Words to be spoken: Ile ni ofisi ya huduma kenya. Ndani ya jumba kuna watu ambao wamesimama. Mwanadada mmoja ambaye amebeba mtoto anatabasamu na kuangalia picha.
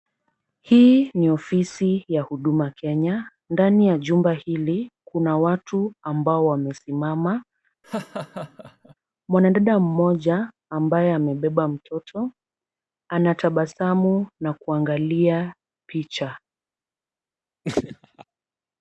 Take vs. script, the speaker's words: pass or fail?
fail